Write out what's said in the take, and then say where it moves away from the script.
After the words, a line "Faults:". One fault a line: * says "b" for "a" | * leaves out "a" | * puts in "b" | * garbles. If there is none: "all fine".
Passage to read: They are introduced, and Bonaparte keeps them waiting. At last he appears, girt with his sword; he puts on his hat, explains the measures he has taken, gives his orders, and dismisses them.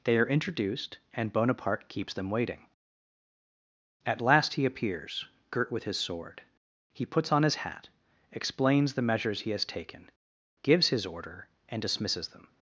They are introduced, and Bonaparte keeps them waiting. At last he appears, girt with his sword; he puts on his hat, explains the measures he has taken, gives his order, and dismisses them.
Faults:
* says "order" for "orders"